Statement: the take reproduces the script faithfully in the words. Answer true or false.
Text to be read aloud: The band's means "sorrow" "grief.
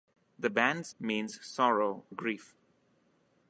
true